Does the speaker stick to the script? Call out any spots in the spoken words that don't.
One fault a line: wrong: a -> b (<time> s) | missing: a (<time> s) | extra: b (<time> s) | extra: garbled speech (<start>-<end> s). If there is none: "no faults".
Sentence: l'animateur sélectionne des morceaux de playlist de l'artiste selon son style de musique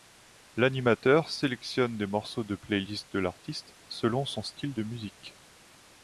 no faults